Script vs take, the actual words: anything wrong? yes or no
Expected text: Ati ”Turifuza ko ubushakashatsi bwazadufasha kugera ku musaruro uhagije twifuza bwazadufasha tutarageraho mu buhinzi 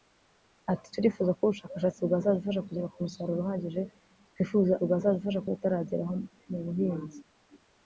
no